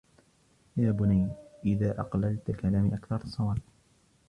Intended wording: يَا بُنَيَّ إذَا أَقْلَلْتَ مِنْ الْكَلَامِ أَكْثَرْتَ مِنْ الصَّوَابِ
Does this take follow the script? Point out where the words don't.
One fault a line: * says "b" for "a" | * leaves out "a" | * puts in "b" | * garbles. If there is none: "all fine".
* leaves out "مِنْ"
* leaves out "مِنْ"